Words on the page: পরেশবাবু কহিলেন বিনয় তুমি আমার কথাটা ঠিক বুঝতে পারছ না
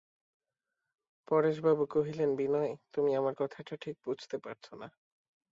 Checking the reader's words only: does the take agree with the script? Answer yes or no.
yes